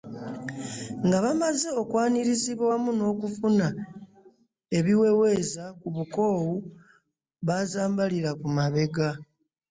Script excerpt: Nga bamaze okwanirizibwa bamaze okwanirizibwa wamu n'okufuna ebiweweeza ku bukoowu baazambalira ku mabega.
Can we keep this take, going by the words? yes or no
no